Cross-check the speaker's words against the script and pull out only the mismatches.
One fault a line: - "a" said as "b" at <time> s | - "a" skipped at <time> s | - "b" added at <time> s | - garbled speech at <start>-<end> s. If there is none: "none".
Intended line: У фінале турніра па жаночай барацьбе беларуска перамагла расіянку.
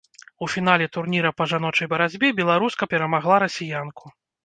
none